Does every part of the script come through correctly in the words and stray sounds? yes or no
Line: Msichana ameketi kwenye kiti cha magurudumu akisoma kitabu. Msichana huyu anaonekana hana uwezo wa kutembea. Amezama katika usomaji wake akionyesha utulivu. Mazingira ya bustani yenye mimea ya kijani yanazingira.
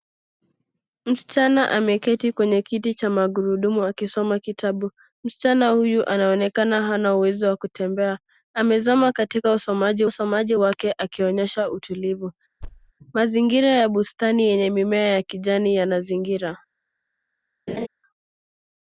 no